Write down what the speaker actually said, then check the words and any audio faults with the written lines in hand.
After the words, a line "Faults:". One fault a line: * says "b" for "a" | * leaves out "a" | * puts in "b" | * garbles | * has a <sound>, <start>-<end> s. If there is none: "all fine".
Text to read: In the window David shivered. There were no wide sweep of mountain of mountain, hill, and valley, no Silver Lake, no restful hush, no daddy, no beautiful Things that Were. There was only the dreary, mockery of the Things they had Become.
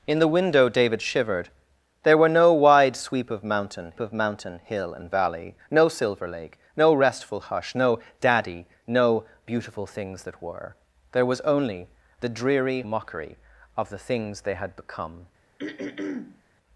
In the window David shivered. There were no wide sweep of mountain of mountain, hill, and valley, no Silver Lake, no restful hush, no daddy, no beautiful Things that Were. There was only the dreary, mockery of the Things they had Become.
Faults:
* has a throat clearing, 15.6-16.4 s